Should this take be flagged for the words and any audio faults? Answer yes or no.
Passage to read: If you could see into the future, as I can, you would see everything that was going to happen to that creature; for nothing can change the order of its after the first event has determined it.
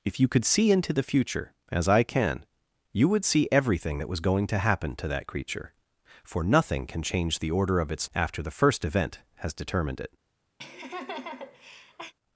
yes